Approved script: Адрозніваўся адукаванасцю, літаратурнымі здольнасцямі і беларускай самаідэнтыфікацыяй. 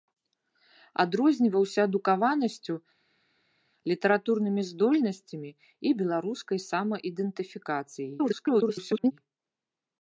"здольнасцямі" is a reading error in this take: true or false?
false